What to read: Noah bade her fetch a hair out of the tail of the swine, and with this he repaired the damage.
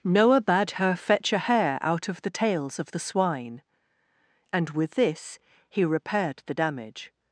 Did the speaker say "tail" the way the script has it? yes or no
no